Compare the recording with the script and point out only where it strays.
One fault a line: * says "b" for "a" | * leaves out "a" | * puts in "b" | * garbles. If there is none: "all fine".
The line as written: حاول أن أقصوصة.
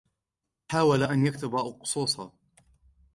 * puts in "يكتب"